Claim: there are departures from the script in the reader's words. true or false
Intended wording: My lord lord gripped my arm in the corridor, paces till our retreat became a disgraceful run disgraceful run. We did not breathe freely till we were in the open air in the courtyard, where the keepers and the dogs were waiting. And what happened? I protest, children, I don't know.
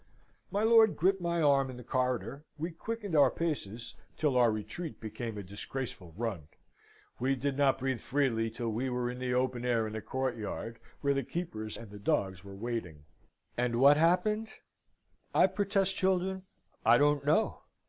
true